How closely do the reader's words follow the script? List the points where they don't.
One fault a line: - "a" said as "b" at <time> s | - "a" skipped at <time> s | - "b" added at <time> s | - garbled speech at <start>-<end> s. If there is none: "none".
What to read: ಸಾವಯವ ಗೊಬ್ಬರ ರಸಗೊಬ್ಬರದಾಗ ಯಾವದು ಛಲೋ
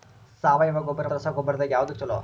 none